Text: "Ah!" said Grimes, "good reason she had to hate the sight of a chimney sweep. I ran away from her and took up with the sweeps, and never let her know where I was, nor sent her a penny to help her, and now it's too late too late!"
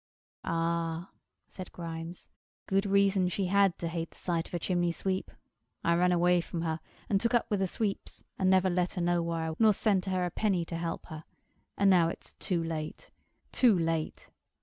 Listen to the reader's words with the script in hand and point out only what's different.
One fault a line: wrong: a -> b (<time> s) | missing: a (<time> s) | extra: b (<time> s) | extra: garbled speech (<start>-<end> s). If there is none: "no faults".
missing: was (9.5 s)